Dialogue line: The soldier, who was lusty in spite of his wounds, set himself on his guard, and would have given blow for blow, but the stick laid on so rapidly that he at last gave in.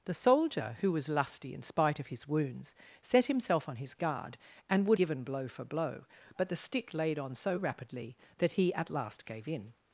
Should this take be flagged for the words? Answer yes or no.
yes